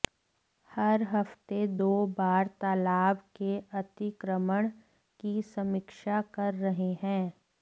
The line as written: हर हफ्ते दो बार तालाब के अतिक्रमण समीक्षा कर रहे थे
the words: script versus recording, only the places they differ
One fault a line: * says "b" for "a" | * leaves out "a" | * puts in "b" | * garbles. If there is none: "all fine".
* puts in "की"
* says "हैं" for "थे"